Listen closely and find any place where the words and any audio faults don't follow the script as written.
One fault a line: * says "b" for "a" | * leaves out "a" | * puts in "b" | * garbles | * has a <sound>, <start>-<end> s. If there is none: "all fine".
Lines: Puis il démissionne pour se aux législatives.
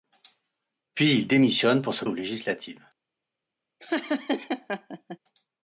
* has a laugh, 3.8-5.2 s